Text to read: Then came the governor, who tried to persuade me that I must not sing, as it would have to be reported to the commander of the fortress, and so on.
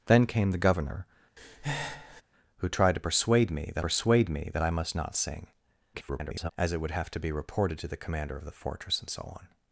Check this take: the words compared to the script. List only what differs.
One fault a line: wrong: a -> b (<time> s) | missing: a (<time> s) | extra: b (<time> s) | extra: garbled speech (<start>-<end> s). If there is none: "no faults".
extra: persuade me that (3.8 s)
extra: garbled speech (5.9-6.5 s)